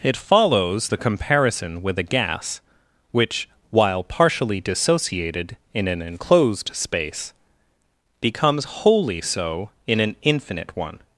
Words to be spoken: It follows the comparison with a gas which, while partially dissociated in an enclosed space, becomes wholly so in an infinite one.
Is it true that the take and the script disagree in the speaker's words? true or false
false